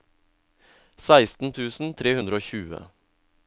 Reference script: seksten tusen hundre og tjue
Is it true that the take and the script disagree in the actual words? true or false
true